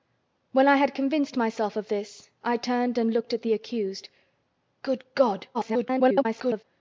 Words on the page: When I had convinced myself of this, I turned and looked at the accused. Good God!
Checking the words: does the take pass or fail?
fail